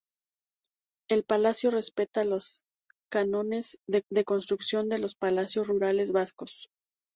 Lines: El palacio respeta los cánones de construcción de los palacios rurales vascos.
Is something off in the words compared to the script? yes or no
yes